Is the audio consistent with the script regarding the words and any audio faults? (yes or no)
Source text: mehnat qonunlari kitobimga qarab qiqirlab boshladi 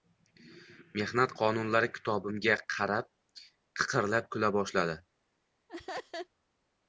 no